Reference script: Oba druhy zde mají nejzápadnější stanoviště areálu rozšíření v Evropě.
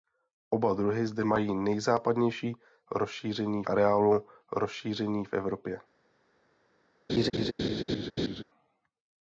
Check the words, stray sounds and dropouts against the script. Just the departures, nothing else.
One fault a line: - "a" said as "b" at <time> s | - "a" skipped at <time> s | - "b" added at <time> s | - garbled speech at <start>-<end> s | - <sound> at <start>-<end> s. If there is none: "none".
- "stanoviště" said as "rozšíření" at 2.9 s
- laugh at 7.1-8.4 s